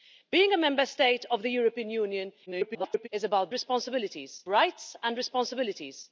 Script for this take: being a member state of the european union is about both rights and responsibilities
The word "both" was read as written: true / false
false